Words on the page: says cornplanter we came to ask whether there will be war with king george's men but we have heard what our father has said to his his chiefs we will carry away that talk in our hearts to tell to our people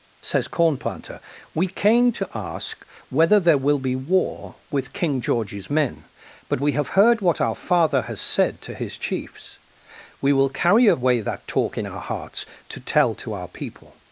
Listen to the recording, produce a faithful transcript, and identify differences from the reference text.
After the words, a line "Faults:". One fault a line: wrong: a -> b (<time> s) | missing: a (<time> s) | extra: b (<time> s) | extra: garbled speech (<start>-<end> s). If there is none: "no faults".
says cornplanter we came to ask whether there will be war with king george's men but we have heard what our father has said to his chiefs we will carry away that talk in our hearts to tell to our people
Faults:
missing: his (9.0 s)